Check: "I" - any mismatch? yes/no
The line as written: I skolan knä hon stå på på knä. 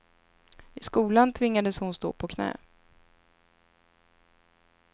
no